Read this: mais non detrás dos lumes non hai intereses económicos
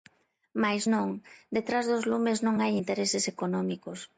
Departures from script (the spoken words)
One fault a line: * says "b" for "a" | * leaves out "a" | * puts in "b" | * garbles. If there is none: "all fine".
all fine